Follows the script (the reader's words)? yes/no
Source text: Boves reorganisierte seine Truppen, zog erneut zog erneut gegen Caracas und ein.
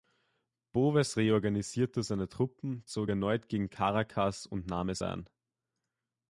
no